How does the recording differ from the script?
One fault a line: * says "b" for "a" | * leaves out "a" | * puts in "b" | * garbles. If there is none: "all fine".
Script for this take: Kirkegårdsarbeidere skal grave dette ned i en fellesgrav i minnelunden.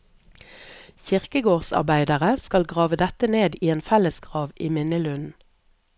all fine